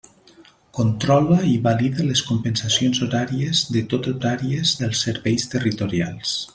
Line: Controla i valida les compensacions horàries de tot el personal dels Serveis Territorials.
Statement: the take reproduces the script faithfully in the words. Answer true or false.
false